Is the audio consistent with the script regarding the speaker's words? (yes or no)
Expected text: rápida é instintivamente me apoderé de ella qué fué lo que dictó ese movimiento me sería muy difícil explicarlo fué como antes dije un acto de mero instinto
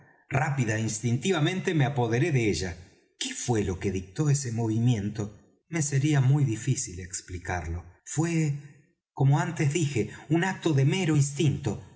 yes